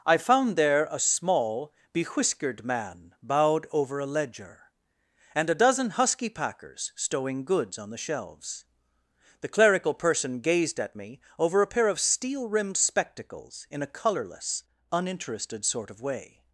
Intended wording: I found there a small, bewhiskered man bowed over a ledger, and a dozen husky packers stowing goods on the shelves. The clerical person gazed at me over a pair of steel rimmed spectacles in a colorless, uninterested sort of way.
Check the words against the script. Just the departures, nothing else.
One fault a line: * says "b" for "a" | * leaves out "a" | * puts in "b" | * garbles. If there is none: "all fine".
all fine